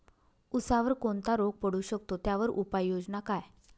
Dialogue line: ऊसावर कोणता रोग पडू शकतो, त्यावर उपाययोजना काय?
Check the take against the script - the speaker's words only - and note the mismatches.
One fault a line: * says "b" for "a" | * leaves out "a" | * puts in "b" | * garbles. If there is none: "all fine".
all fine